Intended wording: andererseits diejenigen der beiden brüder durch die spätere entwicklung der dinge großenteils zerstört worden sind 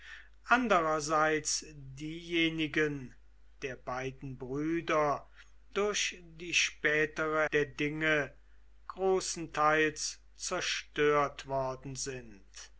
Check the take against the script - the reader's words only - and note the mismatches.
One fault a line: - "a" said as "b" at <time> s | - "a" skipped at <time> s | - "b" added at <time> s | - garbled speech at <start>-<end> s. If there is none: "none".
- "entwicklung" skipped at 7.5 s